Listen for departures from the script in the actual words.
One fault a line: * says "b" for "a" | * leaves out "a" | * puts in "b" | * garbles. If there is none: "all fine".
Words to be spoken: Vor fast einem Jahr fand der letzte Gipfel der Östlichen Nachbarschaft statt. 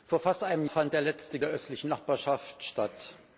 * leaves out "Jahr"
* leaves out "Gipfel"